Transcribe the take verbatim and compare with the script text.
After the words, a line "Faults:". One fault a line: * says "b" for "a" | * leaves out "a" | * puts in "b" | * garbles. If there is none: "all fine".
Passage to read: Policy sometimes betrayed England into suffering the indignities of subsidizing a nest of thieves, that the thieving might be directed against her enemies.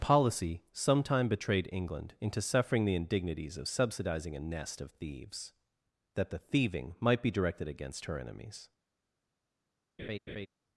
Policy sometime betrayed England into suffering the indignities of subsidizing a nest of thieves, that the thieving might be directed against her enemies.
Faults:
* says "sometime" for "sometimes"